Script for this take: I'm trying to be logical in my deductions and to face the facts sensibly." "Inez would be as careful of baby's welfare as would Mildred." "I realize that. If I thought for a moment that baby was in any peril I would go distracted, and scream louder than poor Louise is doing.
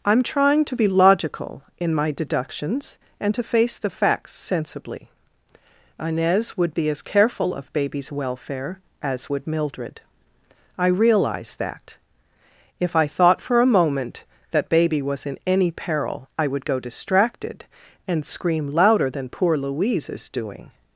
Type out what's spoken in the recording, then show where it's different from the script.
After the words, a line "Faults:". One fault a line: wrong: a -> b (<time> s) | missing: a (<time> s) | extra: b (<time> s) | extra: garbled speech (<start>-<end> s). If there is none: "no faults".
I'm trying to be logical in my deductions and to face the facts sensibly." "Inez would be as careful of baby's welfare as would Mildred." "I realize that. If I thought for a moment that baby was in any peril I would go distracted, and scream louder than poor Louise is doing.
Faults:
no faults